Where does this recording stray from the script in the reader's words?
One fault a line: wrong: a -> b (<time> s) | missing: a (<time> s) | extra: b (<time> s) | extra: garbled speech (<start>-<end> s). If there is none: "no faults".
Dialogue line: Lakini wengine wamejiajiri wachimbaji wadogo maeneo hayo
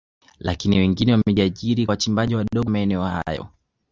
no faults